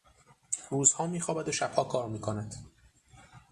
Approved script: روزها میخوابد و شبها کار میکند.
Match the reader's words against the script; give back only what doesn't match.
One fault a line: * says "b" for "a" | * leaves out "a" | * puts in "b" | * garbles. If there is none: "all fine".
all fine